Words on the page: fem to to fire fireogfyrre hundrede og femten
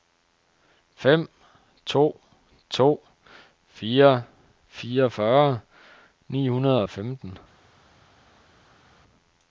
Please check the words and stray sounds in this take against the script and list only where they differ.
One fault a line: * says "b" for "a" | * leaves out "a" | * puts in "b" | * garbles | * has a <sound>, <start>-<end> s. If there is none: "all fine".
* puts in "ni"